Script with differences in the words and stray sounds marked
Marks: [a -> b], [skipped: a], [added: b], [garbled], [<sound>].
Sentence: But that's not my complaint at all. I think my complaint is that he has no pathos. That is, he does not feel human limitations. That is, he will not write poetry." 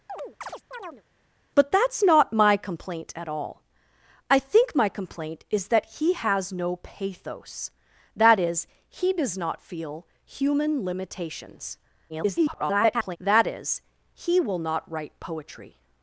[chirp] But that's not my complaint at all. I think my complaint is that he has no pathos. That is, he does not feel human limitations. [garbled] That is, he will not write poetry."